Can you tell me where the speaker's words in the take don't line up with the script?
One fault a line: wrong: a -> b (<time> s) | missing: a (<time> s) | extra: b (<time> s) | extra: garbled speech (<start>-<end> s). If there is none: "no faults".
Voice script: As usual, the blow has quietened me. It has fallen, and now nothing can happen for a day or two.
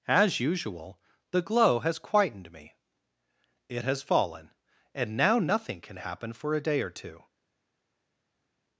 wrong: blow -> glow (1.4 s)